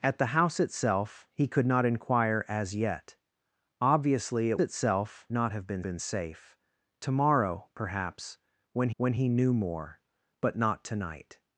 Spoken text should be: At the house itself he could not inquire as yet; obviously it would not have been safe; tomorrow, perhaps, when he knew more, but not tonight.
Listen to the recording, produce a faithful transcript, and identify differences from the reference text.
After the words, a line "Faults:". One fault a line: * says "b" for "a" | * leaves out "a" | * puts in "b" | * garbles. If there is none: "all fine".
At the house itself he could not inquire as yet; obviously it itself not have been been safe; tomorrow, perhaps, when when he knew more, but not tonight.
Faults:
* says "itself" for "would"
* puts in "been"
* puts in "when"